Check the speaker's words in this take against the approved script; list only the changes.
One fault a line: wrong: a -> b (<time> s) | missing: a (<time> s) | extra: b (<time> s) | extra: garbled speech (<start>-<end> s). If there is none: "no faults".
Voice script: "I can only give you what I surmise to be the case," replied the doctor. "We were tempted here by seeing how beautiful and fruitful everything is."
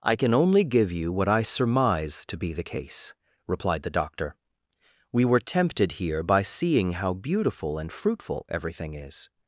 no faults